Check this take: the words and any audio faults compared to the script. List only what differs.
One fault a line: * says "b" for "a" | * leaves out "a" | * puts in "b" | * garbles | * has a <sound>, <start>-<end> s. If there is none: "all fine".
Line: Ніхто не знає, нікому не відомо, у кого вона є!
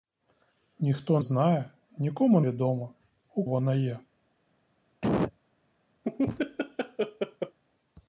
* leaves out "не"
* leaves out "не"
* leaves out "кого"
* has a cough, 5.0-5.4 s
* has a laugh, 6.0-7.6 s